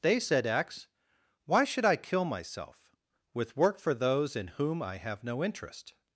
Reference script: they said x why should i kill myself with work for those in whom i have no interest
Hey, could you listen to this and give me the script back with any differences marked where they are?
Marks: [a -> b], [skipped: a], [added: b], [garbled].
they said x why should i kill myself with work for those in whom i have no interest